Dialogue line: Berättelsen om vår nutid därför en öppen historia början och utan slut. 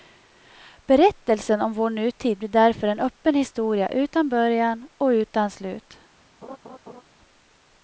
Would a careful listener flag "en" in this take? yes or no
no